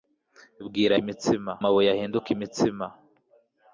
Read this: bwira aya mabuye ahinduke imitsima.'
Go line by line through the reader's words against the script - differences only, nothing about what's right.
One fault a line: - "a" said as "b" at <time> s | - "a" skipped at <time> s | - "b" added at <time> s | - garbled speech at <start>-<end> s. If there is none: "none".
- "aya" said as "imitsima" at 1.0 s